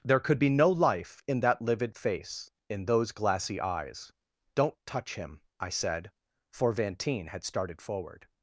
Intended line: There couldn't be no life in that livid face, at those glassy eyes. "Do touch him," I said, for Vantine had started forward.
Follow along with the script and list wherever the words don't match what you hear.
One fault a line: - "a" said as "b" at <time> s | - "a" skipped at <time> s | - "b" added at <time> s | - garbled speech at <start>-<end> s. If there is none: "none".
- "couldn't" said as "could" at 0.2 s
- "at" said as "in" at 2.7 s
- "Do" said as "Don't" at 4.5 s